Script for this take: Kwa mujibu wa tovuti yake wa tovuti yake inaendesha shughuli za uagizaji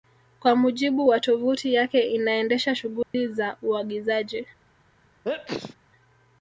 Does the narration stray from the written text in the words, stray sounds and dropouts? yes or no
yes